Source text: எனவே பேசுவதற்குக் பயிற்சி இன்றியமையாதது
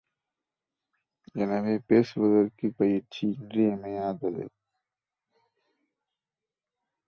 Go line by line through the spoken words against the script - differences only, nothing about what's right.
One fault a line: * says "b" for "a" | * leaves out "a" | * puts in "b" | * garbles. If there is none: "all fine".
all fine